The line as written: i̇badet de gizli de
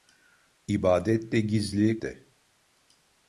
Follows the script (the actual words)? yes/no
yes